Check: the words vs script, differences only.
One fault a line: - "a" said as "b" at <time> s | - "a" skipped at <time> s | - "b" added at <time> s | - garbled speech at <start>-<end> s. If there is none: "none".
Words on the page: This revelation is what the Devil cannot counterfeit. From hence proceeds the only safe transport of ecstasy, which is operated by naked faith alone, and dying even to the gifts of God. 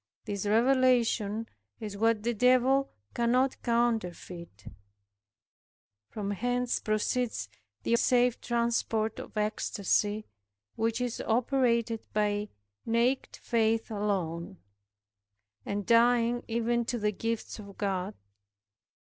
- "only" skipped at 8.0 s